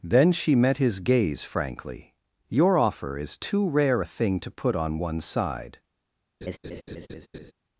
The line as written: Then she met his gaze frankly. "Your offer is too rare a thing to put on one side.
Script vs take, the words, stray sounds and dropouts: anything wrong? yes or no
yes